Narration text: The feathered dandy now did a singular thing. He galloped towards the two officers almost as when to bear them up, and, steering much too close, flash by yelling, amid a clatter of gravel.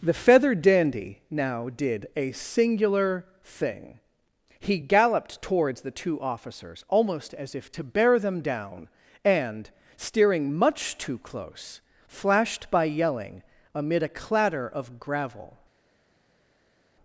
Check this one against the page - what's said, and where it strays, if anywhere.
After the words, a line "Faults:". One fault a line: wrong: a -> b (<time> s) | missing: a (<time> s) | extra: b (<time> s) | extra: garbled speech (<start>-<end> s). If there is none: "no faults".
The feathered dandy now did a singular thing. He galloped towards the two officers almost as if to bear them down, and, steering much too close, flashed by yelling, amid a clatter of gravel.
Faults:
wrong: when -> if (7.5 s)
wrong: up -> down (8.4 s)
wrong: flash -> flashed (12.1 s)